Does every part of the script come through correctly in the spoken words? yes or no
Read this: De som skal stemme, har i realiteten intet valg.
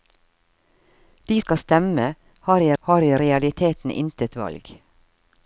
no